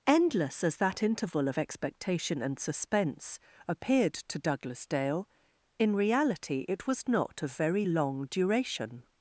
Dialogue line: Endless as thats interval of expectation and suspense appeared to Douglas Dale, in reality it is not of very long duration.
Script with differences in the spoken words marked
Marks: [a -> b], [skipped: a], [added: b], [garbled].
Endless as [thats -> that] interval of expectation and suspense appeared to Douglas Dale, in reality it [is -> was] not of very long duration.